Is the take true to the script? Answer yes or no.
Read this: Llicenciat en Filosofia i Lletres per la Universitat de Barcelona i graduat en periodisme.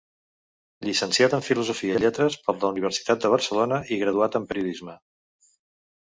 yes